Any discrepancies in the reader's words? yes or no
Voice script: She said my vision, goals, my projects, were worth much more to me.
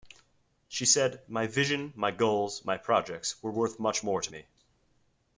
yes